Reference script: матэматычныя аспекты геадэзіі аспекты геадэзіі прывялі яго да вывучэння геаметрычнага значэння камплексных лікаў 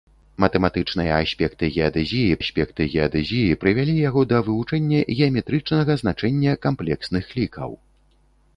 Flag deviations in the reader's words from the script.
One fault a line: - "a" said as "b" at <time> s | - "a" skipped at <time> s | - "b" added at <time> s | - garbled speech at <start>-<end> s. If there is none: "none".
none